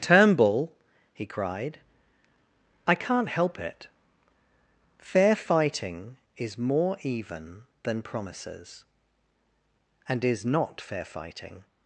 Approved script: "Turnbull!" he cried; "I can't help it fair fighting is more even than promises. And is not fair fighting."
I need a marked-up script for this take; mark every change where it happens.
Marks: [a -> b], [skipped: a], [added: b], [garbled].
"Turnbull!" he cried; "I can't help it fair fighting is more even than promises. And is not fair fighting."